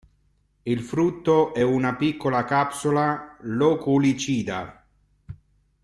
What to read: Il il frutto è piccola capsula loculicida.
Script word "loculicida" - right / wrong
right